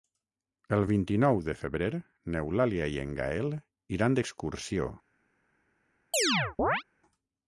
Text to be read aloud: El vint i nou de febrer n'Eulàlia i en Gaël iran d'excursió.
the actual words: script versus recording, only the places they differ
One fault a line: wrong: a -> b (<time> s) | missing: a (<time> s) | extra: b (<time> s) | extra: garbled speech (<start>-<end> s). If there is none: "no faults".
no faults